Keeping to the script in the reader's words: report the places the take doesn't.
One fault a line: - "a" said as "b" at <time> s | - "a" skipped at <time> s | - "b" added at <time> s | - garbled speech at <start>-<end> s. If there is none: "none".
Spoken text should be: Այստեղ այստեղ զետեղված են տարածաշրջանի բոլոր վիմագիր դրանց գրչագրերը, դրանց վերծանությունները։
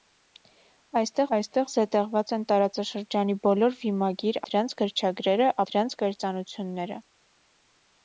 none